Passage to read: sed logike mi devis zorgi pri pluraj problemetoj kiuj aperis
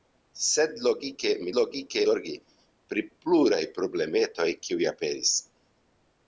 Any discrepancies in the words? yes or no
yes